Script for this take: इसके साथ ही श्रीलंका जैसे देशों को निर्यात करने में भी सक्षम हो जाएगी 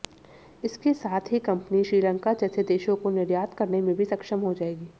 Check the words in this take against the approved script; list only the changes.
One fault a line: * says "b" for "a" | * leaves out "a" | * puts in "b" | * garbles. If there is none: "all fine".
* puts in "कंपनी"